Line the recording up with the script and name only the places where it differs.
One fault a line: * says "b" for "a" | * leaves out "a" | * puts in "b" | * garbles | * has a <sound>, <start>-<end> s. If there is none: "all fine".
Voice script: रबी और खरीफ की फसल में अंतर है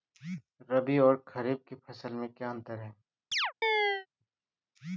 * puts in "क्या"
* has a chirp, 3.3-4.1 s